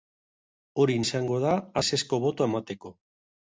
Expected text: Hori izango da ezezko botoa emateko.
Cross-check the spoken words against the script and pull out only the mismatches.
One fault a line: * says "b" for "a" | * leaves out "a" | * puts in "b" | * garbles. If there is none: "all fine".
all fine